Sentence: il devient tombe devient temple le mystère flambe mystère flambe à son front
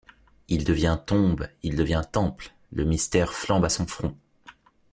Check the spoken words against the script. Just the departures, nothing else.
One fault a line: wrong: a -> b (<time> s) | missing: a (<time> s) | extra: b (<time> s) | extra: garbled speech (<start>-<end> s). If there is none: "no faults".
extra: il (1.6 s)
missing: mystère flambe (3.7 s)